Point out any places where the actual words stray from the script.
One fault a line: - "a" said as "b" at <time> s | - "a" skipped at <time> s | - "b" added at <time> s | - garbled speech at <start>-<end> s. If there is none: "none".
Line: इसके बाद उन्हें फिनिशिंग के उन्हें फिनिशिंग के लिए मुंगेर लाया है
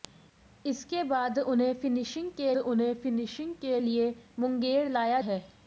none